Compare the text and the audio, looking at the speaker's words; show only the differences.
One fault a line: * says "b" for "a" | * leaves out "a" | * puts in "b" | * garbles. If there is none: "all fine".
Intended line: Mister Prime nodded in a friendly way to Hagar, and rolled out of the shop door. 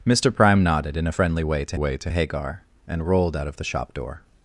* puts in "way to"